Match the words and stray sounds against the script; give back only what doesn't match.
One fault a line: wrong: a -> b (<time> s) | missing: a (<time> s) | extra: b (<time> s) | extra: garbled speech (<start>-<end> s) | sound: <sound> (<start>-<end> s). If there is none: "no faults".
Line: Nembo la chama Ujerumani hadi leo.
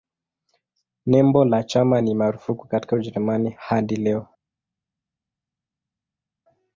extra: ni marufuku katika (2.0 s)